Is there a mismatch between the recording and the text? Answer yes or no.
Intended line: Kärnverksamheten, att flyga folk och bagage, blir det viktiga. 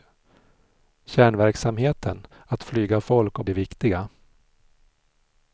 yes